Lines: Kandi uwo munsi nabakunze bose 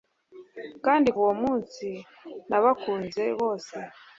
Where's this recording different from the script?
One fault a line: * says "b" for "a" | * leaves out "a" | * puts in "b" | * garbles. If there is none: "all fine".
all fine